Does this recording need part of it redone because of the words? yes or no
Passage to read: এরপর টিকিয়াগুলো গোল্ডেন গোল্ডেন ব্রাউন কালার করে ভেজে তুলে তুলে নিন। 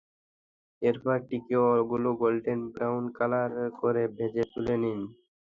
yes